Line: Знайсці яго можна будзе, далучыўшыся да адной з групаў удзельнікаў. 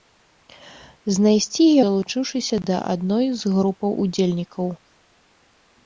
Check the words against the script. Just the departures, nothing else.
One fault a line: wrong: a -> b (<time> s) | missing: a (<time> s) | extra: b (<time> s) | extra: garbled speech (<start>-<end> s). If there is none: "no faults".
missing: яго можна будзе (1.7 s)